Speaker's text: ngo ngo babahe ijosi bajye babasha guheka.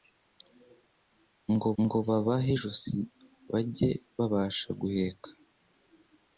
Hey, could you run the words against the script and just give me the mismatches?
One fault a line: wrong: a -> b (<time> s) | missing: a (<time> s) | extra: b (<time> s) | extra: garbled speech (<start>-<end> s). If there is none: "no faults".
no faults